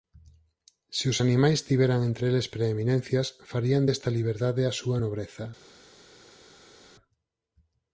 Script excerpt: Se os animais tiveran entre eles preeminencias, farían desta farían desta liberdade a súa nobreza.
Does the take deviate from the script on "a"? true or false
false